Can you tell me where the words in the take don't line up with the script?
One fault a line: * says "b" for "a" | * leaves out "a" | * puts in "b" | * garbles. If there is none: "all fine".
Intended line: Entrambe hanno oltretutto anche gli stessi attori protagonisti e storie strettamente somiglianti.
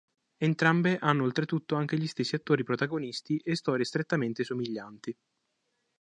all fine